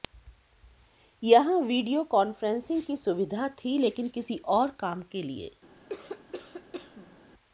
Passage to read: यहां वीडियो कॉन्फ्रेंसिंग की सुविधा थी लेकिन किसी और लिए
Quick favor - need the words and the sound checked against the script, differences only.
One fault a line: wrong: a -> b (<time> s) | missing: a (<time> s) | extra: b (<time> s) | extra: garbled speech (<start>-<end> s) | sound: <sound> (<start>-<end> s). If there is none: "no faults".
extra: काम के (4.8 s)
sound: cough (5.9-7.2 s)